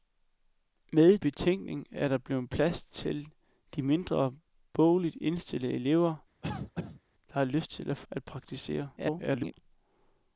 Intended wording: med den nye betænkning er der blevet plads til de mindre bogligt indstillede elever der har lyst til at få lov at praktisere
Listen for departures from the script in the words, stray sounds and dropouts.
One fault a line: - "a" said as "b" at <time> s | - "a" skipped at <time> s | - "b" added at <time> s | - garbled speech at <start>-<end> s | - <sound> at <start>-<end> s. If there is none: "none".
- "den nye" skipped at 1.2 s
- cough at 6.4-7.0 s
- "lov" skipped at 8.1 s
- garbled speech at 9.0-9.5 s